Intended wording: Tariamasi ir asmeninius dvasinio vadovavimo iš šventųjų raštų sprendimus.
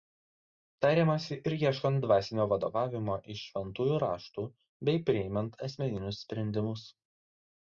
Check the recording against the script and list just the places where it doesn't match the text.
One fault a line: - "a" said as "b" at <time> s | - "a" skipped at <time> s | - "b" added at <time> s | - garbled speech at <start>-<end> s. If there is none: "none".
- "asmeninius" said as "ieškant" at 1.6 s
- "bei priimant asmeninius" added at 4.9 s